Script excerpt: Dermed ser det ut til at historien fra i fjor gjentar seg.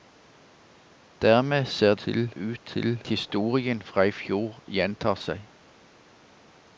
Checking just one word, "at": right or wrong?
wrong